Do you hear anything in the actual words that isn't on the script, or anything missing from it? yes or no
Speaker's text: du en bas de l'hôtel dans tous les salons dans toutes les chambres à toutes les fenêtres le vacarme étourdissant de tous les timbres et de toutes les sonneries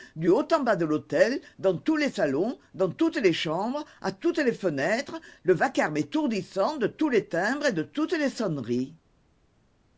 yes